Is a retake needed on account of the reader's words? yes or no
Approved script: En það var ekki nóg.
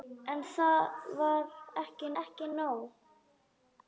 yes